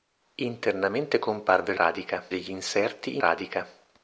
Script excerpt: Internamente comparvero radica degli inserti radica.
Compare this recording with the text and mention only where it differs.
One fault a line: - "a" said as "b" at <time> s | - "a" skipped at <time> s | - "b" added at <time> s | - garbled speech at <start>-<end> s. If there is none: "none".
none